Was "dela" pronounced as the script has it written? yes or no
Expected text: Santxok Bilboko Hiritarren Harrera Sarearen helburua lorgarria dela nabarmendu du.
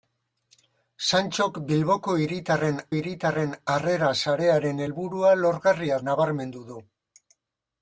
no